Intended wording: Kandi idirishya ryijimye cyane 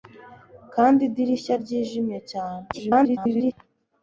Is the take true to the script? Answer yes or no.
no